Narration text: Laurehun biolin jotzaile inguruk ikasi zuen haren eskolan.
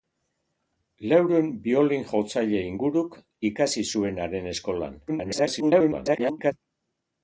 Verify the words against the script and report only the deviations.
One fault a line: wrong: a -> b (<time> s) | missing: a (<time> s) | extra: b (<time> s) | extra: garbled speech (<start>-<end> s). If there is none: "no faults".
extra: garbled speech (5.1-6.5 s)